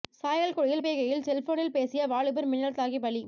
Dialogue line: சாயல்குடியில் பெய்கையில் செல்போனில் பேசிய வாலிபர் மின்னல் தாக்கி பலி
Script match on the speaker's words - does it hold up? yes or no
yes